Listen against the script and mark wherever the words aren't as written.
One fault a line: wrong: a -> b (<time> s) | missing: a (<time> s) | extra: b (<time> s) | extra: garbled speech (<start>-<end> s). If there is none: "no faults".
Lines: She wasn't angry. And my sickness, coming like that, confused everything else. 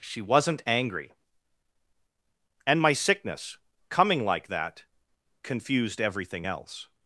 no faults